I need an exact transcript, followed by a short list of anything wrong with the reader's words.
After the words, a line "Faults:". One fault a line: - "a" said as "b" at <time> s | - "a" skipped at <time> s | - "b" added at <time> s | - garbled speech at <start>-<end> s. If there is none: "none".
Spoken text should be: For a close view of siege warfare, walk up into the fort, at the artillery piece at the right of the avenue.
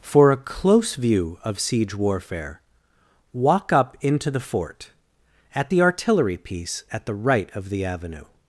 For a close view of siege warfare, walk up into the fort, at the artillery piece at the right of the avenue.
Faults:
none